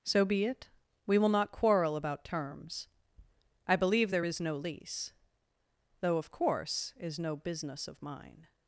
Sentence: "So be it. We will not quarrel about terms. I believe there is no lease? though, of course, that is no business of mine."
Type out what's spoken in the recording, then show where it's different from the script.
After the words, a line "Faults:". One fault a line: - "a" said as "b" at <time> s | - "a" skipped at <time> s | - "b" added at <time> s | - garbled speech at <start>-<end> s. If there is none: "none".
"So be it. We will not quarrel about terms. I believe there is no lease? though, of course, is no business of mine."
Faults:
- "that" skipped at 6.9 s